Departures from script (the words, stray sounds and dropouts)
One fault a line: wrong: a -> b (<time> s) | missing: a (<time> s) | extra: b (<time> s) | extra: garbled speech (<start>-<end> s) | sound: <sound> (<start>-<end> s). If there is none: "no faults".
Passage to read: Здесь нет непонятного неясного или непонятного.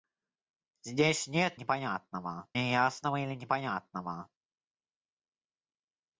no faults